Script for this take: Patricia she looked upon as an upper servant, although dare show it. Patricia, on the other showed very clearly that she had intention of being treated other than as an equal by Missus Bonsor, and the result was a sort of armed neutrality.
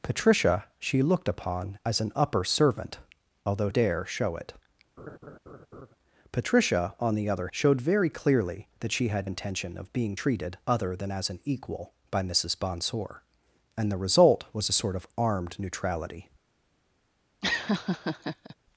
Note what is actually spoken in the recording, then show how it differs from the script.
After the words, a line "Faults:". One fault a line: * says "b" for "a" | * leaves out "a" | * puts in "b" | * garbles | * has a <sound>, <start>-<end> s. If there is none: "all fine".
Patricia she looked upon as an upper servant, although dare show it. Patricia, on the other showed very clearly that she had intention of being treated other than as an equal by Missus Bonsor, and the result was a sort of armed neutrality.
Faults:
* has a laugh, 5.0-5.9 s
* has a laugh, 17.4-18.6 s